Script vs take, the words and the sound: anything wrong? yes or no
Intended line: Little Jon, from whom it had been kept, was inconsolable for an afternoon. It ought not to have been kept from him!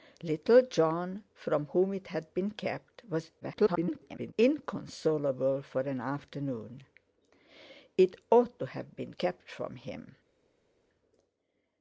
yes